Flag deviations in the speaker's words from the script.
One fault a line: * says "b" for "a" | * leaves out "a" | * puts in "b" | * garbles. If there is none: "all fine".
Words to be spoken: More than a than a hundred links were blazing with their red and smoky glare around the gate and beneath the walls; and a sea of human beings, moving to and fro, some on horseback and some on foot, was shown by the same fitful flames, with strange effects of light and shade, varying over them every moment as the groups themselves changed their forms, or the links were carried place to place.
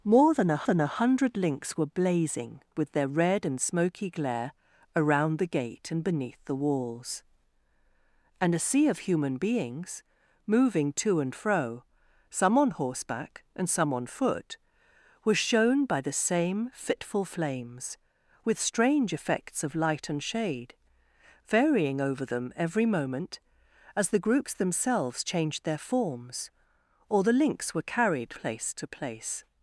all fine